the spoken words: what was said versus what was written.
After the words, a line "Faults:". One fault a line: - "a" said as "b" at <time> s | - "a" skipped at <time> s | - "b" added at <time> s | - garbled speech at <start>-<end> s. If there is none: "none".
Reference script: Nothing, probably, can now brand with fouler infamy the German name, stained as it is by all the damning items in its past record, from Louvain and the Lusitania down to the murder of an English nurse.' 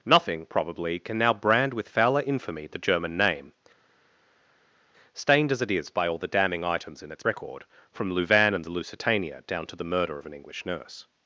Nothing, probably, can now brand with fouler infamy the German name, stained as it is by all the damning items in its record, from Louvain and the Lusitania down to the murder of an English nurse.'
Faults:
- "past" skipped at 7.2 s